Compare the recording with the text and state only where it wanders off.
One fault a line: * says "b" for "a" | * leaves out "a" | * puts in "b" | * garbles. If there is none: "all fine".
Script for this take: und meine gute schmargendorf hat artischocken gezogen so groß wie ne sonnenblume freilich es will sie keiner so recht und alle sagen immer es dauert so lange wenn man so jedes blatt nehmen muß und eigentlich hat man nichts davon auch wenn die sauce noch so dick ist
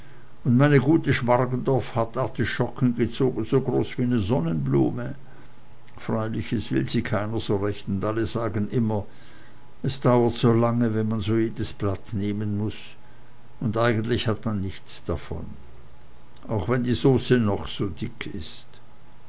all fine